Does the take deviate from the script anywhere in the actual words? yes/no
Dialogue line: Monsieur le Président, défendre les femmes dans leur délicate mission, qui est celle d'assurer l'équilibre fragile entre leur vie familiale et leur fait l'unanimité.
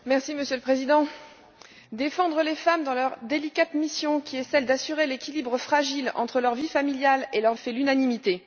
no